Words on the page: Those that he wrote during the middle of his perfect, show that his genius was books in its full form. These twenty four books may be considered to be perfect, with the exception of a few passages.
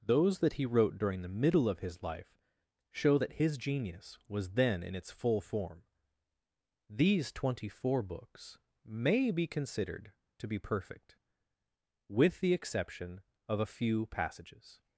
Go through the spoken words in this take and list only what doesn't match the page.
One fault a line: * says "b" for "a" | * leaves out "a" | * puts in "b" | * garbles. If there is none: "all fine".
* says "life" for "perfect"
* says "then" for "books"